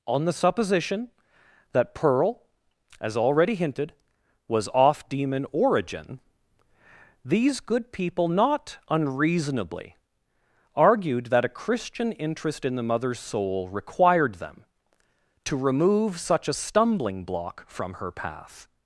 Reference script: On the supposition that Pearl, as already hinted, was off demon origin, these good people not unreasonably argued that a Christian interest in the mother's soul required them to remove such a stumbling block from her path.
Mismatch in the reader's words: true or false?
false